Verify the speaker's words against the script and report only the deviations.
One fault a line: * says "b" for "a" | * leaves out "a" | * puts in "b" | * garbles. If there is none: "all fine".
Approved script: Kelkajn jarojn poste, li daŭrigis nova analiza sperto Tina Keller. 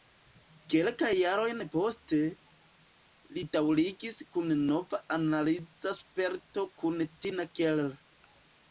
* puts in "kun"
* puts in "kun"